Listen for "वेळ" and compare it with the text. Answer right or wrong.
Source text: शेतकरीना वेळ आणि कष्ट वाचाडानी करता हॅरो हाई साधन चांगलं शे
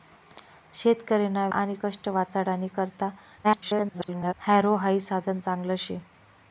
wrong